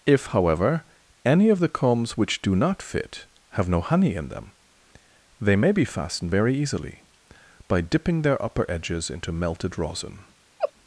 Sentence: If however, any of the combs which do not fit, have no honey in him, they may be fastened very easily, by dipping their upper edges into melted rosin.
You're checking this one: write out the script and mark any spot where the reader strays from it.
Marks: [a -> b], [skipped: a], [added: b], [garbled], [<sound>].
If however, any of the combs which do not fit, have no honey in [him, -> them] they may be fastened very easily, by dipping their upper edges into melted rosin. [laugh]